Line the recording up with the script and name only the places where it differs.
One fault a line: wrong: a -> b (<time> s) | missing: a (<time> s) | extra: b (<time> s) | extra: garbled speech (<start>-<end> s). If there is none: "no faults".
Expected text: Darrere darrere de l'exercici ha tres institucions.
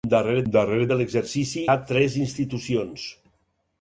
no faults